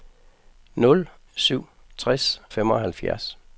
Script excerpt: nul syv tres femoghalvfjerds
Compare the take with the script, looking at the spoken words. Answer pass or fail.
pass